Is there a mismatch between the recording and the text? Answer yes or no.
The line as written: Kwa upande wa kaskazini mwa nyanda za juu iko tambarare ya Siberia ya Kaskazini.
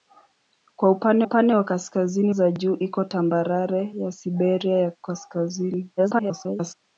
yes